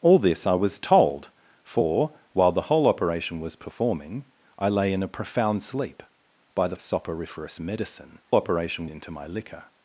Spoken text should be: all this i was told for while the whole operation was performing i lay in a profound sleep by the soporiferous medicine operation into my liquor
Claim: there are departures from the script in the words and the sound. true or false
false